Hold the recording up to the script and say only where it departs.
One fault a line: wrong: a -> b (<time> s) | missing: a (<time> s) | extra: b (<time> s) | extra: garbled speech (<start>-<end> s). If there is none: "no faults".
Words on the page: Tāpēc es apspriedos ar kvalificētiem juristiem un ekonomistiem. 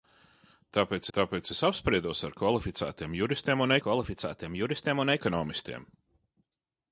extra: tāpēc (1.2 s)
extra: kvalificētiem juristiem un (3.8 s)